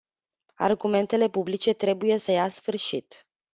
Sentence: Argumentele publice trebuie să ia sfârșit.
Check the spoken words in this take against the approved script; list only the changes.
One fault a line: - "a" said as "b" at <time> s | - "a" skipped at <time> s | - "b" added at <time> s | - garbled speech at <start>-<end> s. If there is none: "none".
none